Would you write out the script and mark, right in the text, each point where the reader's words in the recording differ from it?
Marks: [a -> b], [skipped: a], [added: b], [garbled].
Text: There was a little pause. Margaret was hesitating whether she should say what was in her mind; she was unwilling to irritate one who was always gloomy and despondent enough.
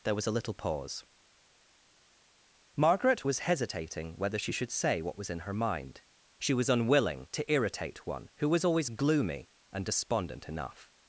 There was a little pause. Margaret was hesitating whether she should say what was in her mind; she was unwilling to irritate one who was always gloomy and despondent enough.